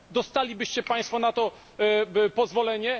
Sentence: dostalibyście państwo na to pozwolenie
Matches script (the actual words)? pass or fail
pass